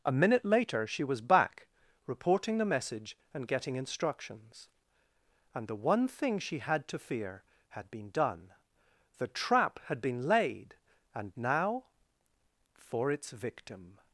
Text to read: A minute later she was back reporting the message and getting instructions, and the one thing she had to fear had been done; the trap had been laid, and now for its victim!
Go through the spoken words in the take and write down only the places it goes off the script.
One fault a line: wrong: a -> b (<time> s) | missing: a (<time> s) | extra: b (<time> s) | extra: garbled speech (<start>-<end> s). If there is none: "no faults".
no faults